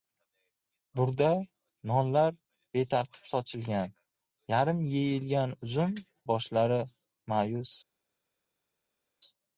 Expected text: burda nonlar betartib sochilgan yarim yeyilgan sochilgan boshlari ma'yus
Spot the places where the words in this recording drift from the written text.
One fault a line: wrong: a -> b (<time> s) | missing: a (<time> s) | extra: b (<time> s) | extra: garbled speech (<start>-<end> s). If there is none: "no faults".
wrong: sochilgan -> uzum (5.7 s)